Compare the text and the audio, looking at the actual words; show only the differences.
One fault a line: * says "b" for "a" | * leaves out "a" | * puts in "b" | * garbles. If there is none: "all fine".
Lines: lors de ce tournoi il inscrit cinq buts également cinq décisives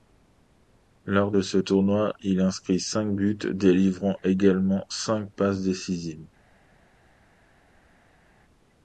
* puts in "délivrant"
* puts in "passes"